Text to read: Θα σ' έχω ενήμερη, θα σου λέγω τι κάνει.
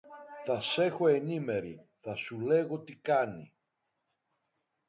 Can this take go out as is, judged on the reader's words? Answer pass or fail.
pass